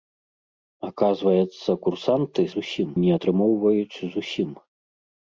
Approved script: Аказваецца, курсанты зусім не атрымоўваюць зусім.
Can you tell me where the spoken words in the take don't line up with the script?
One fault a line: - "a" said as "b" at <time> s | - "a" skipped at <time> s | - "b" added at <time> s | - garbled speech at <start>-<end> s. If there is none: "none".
none